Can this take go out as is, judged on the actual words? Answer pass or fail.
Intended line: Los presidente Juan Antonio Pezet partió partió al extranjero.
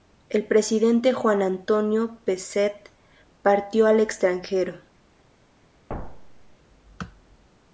fail